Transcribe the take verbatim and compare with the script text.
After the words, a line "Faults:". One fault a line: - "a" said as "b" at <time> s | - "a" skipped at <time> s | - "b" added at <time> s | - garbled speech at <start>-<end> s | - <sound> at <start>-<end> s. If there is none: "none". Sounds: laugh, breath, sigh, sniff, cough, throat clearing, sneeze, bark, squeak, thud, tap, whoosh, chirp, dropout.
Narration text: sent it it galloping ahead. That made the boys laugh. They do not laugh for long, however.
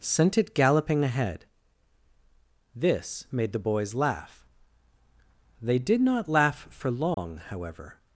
sent it galloping ahead. This made the boys laugh. They did not laugh for long, however.
Faults:
- "it" skipped at 0.6 s
- "That" said as "This" at 2.8 s
- "do" said as "did" at 5.8 s
- dropout at 7.1-7.2 s